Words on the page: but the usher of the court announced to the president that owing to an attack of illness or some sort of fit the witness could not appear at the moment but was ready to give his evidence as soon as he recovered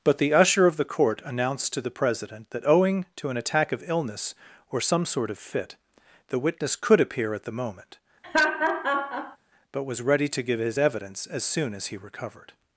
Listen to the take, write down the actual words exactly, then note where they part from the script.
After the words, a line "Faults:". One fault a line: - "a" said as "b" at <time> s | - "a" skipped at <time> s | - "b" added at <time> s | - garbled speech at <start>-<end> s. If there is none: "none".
but the usher of the court announced to the president that owing to an attack of illness or some sort of fit the witness could appear at the moment but was ready to give his evidence as soon as he recovered
Faults:
- "not" skipped at 7.0 s